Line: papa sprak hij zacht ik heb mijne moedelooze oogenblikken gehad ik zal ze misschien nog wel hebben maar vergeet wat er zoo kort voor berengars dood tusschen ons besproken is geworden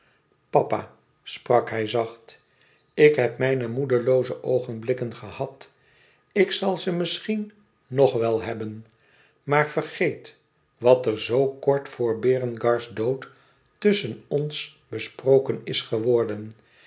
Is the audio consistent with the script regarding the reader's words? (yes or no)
yes